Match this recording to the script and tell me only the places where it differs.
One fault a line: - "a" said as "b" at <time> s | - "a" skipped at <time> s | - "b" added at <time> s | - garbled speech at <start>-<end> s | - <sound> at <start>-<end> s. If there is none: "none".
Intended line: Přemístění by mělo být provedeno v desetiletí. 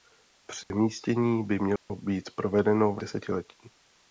- dropout at 0.6-0.7 s
- dropout at 1.8-1.9 s